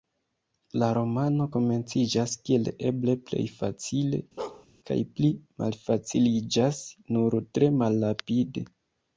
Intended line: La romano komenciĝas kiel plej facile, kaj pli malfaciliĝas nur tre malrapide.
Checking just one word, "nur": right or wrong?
right